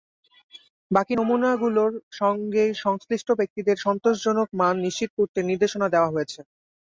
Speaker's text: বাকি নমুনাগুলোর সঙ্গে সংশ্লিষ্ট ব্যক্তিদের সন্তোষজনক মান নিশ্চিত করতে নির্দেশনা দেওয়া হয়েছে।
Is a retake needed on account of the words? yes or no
no